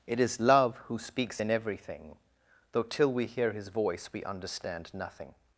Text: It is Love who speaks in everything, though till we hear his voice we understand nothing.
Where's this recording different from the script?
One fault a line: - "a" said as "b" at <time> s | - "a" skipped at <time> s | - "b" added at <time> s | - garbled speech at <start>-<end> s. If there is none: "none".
none